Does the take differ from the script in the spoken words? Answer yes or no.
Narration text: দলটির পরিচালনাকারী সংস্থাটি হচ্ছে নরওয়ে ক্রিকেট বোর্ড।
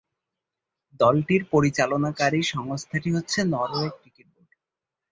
no